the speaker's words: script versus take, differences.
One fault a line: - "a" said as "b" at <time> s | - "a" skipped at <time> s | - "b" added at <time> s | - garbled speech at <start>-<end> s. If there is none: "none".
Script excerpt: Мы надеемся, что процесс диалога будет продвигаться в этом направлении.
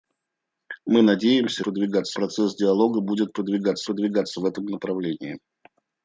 - "что" said as "продвигаться" at 1.6 s
- "продвигаться" added at 3.8 s